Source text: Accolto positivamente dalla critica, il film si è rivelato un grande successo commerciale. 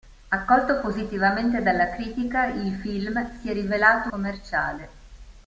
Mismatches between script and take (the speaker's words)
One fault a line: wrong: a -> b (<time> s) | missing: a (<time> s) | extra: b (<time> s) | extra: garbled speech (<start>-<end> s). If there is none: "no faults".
missing: un grande successo (4.1 s)